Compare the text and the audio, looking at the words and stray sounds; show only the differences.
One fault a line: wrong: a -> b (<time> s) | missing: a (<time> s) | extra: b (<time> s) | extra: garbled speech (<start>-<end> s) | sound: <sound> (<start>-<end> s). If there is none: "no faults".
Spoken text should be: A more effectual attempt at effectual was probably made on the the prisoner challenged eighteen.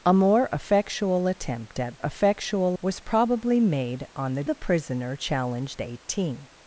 no faults